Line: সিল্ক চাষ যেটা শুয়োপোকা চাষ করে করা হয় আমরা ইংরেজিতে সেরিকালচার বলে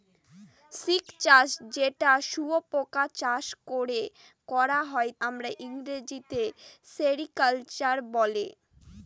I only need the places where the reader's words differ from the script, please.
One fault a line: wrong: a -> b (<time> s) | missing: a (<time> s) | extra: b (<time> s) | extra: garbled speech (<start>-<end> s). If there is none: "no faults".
no faults